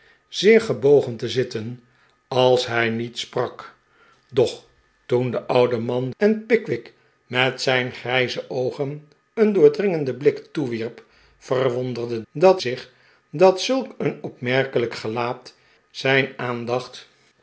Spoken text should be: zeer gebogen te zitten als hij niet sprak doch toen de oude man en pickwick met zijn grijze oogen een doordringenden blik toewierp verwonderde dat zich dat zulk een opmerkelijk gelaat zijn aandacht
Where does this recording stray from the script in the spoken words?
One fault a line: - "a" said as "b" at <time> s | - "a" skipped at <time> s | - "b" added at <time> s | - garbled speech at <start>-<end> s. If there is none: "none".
none